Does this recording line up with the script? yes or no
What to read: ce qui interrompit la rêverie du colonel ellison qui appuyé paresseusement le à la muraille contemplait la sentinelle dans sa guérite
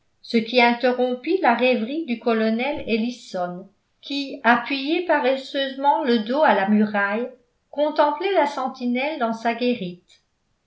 no